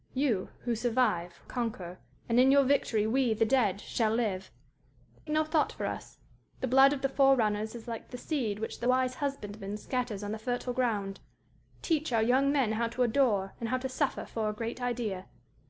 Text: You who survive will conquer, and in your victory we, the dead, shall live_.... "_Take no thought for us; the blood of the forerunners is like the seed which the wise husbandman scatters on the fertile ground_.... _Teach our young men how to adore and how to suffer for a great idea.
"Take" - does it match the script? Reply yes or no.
no